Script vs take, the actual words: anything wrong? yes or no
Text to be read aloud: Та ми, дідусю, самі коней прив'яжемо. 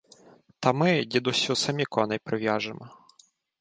no